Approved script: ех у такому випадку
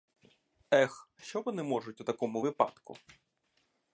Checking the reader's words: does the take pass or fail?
fail